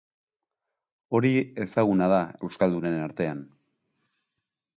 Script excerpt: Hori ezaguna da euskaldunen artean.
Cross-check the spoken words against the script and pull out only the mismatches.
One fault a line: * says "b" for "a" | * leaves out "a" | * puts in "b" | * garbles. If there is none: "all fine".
all fine